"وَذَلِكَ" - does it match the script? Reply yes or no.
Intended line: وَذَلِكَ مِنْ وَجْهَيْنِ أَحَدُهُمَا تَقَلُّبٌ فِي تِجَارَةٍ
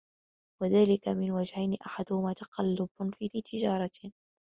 yes